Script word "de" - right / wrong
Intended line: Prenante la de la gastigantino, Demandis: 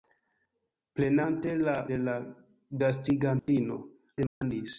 right